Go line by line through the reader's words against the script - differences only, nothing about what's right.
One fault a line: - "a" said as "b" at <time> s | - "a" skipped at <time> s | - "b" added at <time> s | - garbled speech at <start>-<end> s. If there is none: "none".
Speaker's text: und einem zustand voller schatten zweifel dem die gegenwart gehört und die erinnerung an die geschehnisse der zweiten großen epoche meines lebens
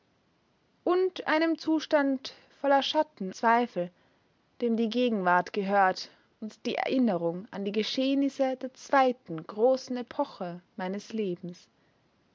none